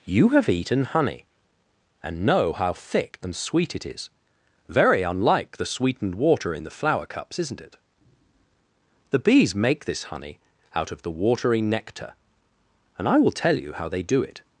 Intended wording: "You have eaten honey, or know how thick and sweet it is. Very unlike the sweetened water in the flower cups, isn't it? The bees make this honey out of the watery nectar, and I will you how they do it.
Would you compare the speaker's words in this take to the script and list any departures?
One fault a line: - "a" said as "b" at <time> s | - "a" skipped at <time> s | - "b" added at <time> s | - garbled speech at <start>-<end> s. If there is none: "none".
- "or" said as "and" at 2.0 s
- "tell" added at 13.3 s